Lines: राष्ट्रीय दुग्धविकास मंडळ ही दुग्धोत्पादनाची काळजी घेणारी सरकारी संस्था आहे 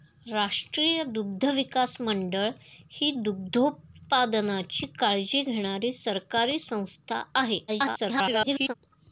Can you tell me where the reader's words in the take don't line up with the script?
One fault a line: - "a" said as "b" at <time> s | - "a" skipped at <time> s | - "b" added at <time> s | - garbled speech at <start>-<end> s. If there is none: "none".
- garbled speech at 7.7-8.7 s